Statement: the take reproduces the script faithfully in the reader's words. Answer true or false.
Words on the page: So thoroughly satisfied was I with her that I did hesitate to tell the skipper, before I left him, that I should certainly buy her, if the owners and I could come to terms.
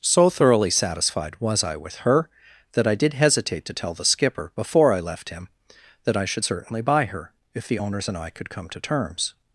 true